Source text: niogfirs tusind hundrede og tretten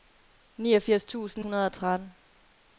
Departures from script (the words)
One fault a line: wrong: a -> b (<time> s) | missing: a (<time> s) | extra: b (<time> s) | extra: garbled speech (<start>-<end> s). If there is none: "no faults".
no faults